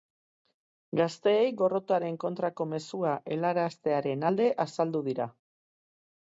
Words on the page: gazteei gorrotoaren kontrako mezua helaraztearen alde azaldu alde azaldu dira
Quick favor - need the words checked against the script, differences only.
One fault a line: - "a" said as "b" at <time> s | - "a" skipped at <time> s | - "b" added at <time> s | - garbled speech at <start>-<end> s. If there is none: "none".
- "alde azaldu" skipped at 5.0 s